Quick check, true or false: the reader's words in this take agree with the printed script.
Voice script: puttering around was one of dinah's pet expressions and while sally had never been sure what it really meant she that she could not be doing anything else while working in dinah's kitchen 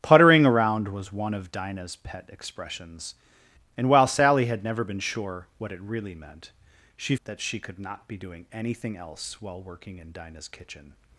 true